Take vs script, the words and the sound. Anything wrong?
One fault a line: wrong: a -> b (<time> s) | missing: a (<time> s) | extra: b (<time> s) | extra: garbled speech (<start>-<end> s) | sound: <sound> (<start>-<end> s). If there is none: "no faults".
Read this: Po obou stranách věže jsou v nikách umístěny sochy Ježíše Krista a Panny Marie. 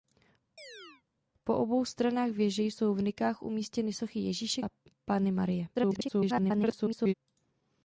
sound: chirp (0.6-1.0 s)
missing: Krista (4.6 s)
extra: garbled speech (5.7-7.1 s)